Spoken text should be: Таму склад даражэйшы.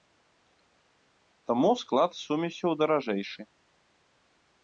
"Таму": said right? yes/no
yes